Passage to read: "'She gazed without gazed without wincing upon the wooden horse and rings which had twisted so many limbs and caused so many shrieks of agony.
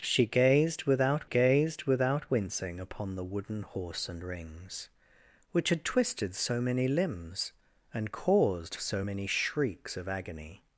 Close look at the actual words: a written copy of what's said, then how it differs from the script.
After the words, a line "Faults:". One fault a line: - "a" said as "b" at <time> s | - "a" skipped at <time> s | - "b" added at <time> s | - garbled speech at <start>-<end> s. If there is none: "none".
"'She gazed without gazed without wincing upon the wooden horse and rings which had twisted so many limbs and caused so many shrieks of agony.
Faults:
none